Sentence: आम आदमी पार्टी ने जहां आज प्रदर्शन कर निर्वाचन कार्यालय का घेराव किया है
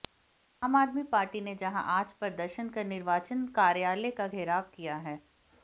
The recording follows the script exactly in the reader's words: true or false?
true